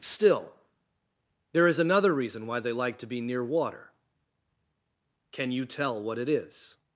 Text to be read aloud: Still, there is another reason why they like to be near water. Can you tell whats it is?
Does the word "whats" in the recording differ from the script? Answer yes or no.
yes